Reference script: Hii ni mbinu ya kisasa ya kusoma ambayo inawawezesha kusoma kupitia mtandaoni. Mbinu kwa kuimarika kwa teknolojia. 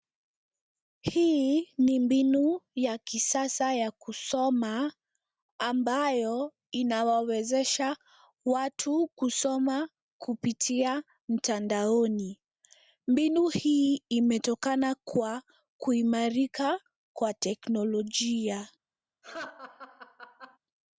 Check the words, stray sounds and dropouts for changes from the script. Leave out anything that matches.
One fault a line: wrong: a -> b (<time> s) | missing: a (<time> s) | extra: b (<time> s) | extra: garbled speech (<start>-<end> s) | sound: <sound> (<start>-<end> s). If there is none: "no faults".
extra: watu (8.4 s)
extra: hii imetokana (13.5 s)
sound: laugh (19.2-20.6 s)